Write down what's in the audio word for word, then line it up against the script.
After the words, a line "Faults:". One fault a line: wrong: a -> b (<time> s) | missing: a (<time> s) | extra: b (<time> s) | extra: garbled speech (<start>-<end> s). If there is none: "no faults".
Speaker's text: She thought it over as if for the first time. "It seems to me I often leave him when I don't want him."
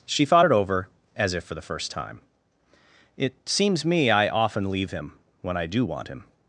She thought it over as if for the first time. "It seems me I often leave him when I do want him."
Faults:
missing: to (3.8 s)
wrong: don't -> do (5.7 s)